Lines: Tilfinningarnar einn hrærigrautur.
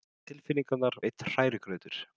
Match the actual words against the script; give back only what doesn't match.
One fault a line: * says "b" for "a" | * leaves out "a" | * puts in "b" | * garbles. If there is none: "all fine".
all fine